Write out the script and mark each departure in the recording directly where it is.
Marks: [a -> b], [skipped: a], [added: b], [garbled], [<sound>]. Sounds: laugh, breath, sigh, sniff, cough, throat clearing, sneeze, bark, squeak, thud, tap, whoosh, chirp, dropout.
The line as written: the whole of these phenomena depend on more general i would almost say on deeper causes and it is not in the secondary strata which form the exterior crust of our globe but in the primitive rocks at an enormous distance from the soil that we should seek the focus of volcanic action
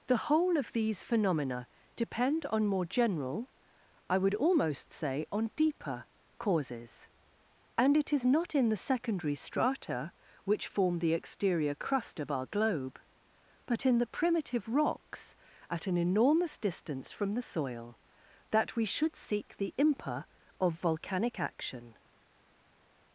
the whole of these phenomena depend on more general i would almost say on deeper causes and it is not in the secondary strata which form the exterior crust of our globe but in the primitive rocks at an enormous distance from the soil that we should seek the [focus -> impa] of volcanic action